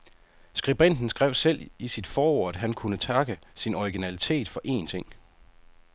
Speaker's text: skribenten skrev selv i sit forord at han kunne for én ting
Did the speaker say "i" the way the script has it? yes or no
yes